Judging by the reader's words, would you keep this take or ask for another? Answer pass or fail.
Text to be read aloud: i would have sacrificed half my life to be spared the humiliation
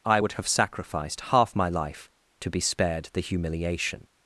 pass